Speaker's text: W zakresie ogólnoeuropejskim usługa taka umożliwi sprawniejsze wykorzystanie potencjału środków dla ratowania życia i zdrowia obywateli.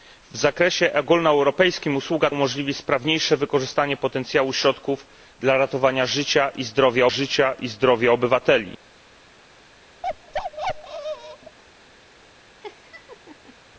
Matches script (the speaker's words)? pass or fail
fail